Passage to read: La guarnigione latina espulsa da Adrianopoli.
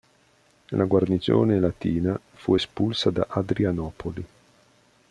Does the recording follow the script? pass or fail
fail